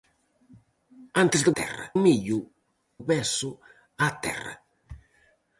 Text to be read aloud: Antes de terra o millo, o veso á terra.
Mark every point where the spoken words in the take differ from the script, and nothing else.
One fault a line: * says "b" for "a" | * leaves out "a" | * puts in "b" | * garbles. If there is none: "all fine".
all fine